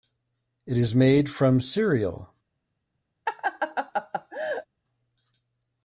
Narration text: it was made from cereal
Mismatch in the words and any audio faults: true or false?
true